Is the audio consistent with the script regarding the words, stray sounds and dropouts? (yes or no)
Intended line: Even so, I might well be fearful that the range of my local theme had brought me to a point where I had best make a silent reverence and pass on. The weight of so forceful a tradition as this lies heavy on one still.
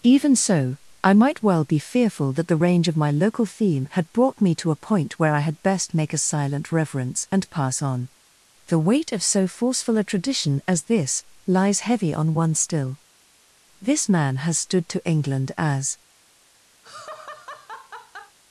no